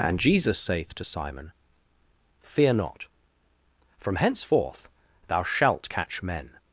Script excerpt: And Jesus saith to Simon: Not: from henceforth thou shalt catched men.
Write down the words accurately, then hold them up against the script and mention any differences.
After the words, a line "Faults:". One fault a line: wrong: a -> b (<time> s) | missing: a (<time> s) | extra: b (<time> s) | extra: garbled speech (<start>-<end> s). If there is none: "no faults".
And Jesus saith to Simon: Fear not: from henceforth thou shalt catch men.
Faults:
extra: Fear (2.4 s)
wrong: catched -> catch (5.9 s)